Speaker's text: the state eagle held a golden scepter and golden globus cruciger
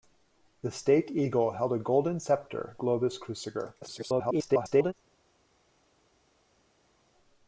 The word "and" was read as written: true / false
false